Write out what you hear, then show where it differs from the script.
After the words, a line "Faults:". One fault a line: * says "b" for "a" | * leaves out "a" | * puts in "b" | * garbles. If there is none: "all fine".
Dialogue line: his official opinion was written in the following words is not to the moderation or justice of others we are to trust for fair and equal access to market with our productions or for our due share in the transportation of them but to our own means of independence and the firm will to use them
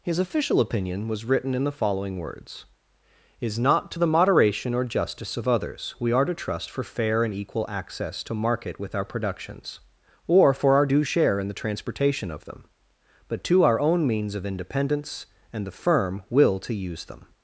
his official opinion was written in the following words is not to the moderation or justice of others we are to trust for fair and equal access to market with our productions or for our due share in the transportation of them but to our own means of independence and the firm will to use them
Faults:
all fine